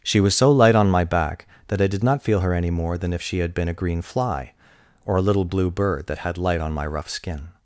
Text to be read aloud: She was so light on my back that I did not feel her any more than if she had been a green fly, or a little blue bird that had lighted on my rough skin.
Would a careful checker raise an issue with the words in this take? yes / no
yes